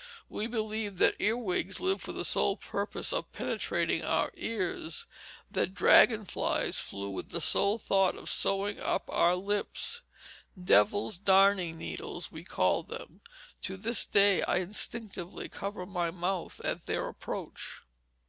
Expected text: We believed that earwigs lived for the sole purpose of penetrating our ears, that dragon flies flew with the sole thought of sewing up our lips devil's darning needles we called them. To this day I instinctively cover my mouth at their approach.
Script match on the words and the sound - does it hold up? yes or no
yes